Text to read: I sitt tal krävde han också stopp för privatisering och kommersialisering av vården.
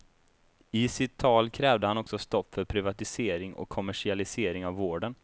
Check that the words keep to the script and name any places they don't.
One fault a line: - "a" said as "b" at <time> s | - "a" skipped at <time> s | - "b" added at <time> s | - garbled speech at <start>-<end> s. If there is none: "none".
none